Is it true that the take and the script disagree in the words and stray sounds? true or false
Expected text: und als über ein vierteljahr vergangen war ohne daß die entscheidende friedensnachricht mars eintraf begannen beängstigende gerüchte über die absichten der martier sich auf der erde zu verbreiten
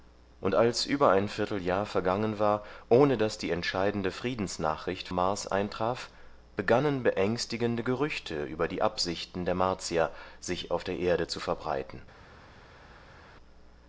false